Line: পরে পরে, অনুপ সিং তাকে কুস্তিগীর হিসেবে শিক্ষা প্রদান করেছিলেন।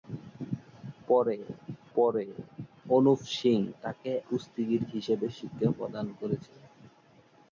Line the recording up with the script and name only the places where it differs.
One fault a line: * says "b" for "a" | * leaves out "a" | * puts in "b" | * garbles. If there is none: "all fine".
all fine